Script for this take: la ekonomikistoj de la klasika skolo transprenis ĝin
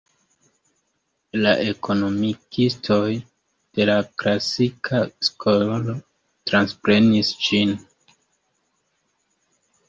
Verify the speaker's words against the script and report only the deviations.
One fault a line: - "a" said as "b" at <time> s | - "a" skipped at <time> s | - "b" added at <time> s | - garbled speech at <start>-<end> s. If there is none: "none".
none